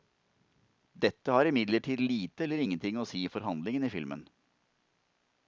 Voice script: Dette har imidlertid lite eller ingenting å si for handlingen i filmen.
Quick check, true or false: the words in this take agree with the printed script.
true